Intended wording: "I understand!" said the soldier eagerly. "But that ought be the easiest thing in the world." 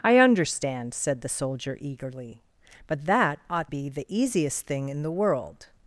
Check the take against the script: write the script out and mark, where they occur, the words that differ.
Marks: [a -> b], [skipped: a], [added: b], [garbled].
"I understand!" said the soldier eagerly. "But that ought be the easiest thing in the world."